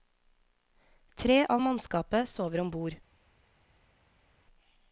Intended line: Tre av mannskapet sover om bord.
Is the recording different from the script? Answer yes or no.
no